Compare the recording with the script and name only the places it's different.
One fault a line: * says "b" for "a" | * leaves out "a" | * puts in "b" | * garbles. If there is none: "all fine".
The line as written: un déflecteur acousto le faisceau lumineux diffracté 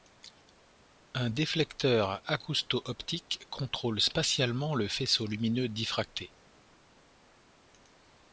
* puts in "optique contrôle spatialement"